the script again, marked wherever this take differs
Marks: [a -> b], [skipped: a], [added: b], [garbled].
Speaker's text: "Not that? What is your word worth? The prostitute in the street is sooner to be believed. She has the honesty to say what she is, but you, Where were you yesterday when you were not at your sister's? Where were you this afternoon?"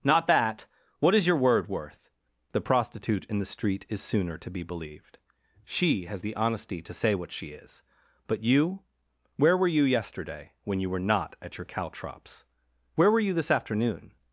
"Not that? What is your word worth? The prostitute in the street is sooner to be believed. She has the honesty to say what she is, but you, Where were you yesterday when you were not at your [sister's? -> caltrops] Where were you this afternoon?"